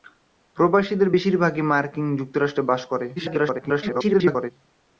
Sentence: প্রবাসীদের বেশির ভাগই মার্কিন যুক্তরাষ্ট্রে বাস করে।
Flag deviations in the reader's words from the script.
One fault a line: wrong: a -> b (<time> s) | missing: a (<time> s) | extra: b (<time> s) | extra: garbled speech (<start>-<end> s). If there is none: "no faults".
extra: garbled speech (3.2-4.5 s)